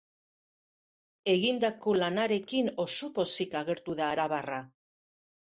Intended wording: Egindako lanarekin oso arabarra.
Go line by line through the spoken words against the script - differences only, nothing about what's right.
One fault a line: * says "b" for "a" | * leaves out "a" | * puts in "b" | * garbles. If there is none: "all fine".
* puts in "pozik agertu da"